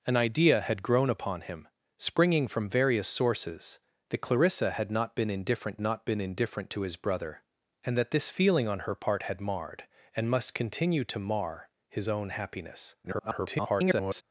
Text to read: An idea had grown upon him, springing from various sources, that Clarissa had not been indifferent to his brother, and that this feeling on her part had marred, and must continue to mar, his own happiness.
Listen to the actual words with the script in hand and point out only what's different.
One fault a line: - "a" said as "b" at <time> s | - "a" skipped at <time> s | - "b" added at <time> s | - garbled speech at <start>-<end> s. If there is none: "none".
- "not been indifferent" added at 5.8 s
- garbled speech at 13.0-14.2 s